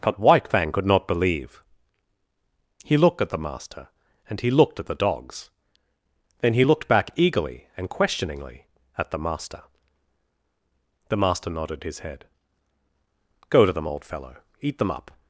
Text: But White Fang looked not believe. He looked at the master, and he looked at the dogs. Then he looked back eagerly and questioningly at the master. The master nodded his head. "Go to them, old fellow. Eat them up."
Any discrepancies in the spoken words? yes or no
yes